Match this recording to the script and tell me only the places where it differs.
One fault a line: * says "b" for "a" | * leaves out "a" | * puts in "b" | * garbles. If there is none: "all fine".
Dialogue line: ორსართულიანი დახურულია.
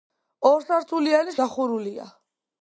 all fine